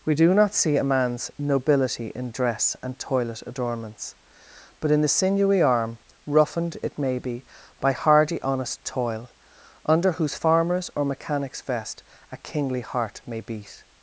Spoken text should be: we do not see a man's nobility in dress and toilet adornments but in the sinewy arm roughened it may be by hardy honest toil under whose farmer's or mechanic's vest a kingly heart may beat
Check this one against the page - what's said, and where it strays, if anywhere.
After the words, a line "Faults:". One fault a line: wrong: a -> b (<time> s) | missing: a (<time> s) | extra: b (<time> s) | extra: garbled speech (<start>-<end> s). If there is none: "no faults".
we do not see a man's nobility in dress and toilet adornments but in the sinewy arm roughened it may be by hardy honest toil under whose farmer's or mechanic's vest a kingly heart may beat
Faults:
no faults